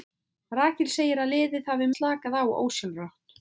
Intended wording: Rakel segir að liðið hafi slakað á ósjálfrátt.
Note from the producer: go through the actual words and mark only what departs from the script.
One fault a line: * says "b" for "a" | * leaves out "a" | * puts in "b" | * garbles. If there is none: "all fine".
all fine